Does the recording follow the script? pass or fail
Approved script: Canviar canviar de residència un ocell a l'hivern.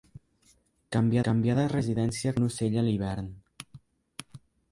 pass